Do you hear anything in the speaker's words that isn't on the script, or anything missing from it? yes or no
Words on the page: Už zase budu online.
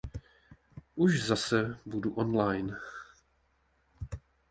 no